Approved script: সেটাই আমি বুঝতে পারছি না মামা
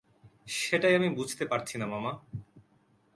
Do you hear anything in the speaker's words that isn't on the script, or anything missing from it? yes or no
no